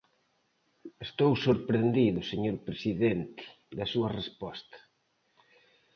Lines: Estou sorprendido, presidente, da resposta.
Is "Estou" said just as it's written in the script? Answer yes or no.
yes